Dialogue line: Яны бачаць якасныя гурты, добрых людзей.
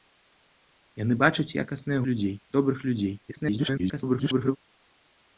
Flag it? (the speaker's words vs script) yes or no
yes